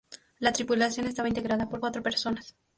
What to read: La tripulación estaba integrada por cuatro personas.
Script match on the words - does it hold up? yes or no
yes